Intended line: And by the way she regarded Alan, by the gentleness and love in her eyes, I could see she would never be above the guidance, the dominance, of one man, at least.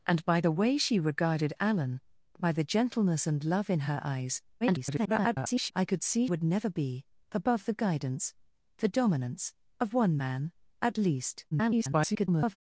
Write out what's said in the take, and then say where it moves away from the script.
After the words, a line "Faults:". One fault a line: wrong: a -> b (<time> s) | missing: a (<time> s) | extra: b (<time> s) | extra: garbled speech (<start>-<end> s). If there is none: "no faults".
And by the way she regarded Alan, by the gentleness and love in her eyes, [garbled] I could see would never be above the guidance, the dominance, of one man, at least. [garbled]
Faults:
extra: garbled speech (4.6-5.7 s)
missing: she (6.3 s)
extra: garbled speech (11.5-12.6 s)